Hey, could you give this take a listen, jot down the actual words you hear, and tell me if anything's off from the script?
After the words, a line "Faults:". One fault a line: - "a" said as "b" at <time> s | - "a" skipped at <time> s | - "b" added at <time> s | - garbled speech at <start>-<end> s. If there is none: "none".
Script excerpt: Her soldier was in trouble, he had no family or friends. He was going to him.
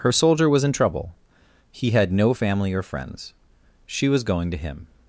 Her soldier was in trouble, he had no family or friends. She was going to him.
Faults:
- "He" said as "She" at 3.9 s